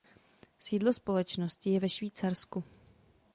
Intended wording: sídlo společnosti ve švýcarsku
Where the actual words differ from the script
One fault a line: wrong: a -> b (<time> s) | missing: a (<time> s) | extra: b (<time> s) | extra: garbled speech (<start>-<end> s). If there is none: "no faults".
extra: je (1.7 s)